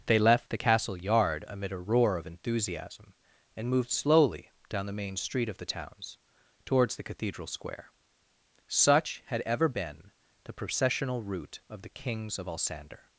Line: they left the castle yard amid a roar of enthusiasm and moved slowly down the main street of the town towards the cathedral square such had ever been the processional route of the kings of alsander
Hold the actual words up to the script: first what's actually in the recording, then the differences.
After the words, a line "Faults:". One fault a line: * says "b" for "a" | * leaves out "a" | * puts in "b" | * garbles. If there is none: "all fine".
they left the castle yard amid a roar of enthusiasm and moved slowly down the main street of the towns towards the cathedral square such had ever been the processional route of the kings of alsander
Faults:
* says "towns" for "town"